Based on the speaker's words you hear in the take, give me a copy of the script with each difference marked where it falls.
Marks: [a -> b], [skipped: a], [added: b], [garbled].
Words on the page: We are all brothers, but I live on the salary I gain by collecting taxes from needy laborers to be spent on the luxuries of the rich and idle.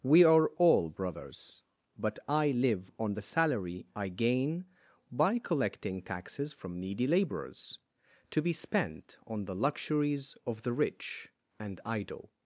We are all brothers, but I live on the salary I gain by collecting taxes from needy laborers to be spent on the luxuries of the rich and idle.